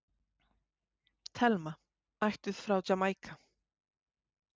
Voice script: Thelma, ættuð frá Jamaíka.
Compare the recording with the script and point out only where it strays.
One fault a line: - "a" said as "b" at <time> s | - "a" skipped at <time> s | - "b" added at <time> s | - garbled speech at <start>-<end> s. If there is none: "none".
none